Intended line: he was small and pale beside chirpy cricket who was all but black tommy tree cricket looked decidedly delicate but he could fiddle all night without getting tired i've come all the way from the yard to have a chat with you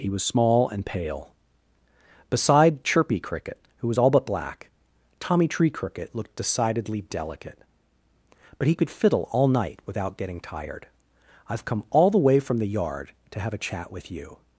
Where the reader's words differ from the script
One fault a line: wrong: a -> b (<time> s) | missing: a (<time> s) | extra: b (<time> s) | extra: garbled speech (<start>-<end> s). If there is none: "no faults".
no faults